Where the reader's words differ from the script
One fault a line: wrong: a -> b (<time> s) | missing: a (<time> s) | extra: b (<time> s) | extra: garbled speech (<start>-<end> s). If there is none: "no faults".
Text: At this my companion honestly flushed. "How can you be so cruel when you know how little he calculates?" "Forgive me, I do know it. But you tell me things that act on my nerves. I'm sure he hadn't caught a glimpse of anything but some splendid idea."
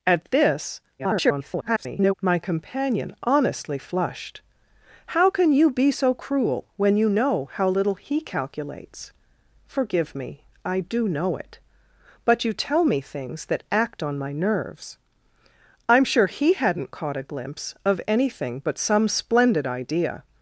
extra: garbled speech (1.0-2.1 s)